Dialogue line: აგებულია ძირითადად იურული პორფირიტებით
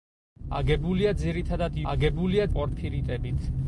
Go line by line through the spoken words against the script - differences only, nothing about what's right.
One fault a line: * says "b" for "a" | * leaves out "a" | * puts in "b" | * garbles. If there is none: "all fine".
* says "აგებულია" for "იურული"